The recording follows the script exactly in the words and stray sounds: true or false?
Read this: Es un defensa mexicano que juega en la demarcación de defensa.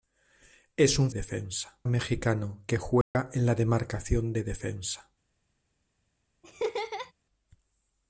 false